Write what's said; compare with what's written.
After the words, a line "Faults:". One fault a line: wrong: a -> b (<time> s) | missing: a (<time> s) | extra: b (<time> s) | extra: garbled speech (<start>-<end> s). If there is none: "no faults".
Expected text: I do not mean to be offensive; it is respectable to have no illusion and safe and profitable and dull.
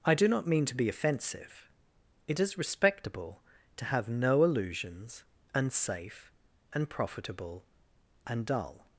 I do not mean to be offensive; it is respectable to have no illusions and safe and profitable and dull.
Faults:
wrong: illusion -> illusions (4.4 s)